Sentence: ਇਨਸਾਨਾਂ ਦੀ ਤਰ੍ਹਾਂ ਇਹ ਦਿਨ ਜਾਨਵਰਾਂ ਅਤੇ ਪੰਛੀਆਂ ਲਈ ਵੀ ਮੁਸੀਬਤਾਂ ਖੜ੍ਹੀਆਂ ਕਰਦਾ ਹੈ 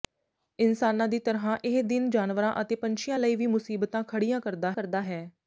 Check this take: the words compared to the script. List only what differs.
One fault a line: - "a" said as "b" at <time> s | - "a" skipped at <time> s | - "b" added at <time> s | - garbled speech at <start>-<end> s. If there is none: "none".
- "ਕਰਦਾ" added at 4.7 s